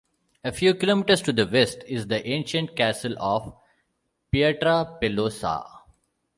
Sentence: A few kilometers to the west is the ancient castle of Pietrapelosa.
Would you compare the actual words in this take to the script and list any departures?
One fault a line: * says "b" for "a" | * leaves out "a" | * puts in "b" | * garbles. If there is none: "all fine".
all fine